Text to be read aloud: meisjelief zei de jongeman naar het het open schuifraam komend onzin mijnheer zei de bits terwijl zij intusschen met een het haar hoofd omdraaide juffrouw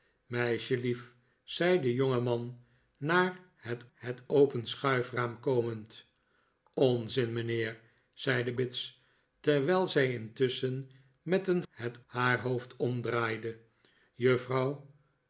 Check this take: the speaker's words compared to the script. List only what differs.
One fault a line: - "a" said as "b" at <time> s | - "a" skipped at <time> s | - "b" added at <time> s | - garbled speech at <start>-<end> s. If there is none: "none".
none